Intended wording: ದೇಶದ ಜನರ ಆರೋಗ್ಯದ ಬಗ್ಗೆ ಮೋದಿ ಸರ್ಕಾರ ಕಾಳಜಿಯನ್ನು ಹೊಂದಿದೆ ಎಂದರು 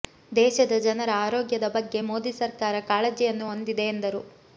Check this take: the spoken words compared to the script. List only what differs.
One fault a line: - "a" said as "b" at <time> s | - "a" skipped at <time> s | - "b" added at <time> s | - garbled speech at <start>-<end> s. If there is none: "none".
none